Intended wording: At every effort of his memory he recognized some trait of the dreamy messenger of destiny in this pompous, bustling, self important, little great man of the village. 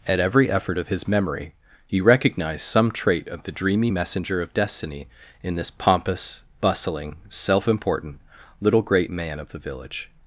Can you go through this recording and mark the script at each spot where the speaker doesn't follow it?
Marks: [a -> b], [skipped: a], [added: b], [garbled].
At every effort of his memory he recognized some trait of the dreamy messenger of destiny in this pompous, bustling, self important, little great man of the village.